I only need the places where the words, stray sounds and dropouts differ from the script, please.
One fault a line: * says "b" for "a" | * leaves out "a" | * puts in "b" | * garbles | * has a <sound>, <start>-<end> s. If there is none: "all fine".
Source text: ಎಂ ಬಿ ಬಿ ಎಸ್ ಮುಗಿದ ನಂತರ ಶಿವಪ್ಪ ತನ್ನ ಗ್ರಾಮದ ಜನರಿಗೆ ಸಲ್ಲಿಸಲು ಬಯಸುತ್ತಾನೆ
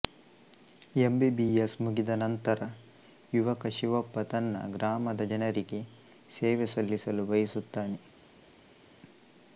* puts in "ಯುವಕ"
* puts in "ಸೇವೆ"